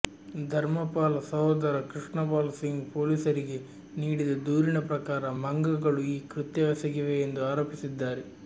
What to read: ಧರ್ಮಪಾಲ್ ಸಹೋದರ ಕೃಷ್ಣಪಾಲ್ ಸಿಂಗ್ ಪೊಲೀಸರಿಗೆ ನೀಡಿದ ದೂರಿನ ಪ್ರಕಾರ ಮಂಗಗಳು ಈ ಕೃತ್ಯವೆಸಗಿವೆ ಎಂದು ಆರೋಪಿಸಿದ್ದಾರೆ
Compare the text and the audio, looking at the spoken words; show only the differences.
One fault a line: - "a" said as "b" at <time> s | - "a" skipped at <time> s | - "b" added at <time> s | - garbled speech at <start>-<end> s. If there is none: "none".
none